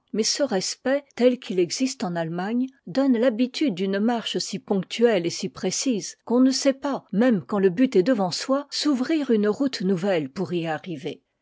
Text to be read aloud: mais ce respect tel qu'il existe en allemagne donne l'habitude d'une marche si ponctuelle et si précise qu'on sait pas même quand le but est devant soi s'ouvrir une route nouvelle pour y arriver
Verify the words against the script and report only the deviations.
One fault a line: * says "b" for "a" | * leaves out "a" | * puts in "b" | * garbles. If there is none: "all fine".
* puts in "ne"